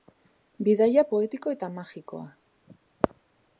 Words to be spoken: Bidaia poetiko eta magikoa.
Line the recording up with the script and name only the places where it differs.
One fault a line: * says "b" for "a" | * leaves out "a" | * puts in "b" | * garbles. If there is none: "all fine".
all fine